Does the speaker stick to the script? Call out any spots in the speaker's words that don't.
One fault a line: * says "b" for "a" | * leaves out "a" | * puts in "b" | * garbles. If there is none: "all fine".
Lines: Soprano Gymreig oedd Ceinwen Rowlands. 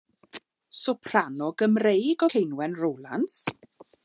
* leaves out "oedd"